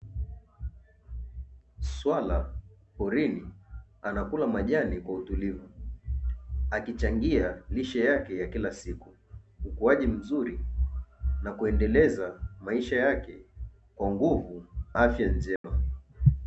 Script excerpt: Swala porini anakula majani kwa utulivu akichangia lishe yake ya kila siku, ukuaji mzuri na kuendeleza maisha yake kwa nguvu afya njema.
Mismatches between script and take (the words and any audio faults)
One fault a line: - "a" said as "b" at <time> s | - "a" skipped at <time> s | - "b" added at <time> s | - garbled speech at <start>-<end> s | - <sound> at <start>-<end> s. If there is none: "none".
- dropout at 15.6-15.6 s